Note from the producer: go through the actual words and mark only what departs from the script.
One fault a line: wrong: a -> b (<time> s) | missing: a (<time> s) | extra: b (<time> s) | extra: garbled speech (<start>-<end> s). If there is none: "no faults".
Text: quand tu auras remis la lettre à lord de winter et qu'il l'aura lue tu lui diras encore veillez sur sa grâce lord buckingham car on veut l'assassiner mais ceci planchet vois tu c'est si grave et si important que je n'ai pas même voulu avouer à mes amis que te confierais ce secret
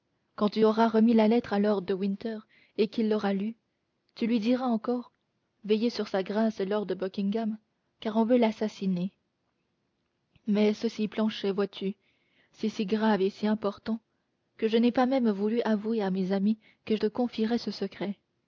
no faults